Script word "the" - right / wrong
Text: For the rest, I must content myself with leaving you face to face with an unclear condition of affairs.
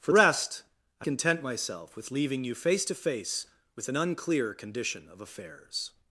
wrong